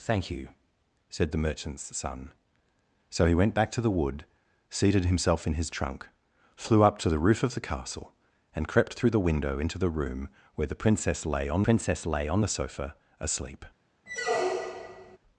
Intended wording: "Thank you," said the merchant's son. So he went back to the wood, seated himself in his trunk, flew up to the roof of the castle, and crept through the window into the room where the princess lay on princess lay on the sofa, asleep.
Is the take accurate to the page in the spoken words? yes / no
yes